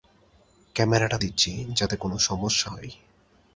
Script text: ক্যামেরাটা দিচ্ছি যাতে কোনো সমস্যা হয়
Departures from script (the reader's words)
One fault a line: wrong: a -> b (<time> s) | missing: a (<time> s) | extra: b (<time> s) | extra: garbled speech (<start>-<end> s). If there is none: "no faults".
no faults